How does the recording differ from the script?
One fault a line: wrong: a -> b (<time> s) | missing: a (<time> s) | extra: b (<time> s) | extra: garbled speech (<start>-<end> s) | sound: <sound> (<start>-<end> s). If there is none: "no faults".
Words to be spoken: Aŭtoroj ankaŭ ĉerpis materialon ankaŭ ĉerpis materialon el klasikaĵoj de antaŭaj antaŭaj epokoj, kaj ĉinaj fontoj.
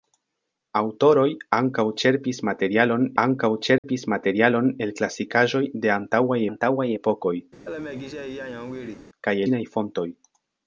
sound: dropout (3.8-3.8 s)
sound: laugh (7.6-9.1 s)